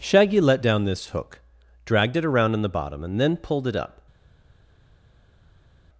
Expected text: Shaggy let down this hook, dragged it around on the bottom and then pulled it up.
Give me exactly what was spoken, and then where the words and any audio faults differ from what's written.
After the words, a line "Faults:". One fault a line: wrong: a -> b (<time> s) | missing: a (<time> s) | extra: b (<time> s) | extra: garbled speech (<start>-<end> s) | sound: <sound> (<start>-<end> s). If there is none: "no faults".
Shaggy let down this hook, dragged it around on the bottom and then pulled it up.
Faults:
no faults